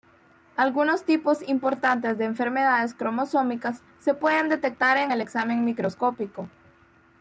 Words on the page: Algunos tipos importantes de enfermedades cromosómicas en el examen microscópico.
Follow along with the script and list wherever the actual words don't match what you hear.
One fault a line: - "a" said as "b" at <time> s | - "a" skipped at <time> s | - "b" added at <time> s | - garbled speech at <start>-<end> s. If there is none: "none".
- "se pueden detectar" added at 4.0 s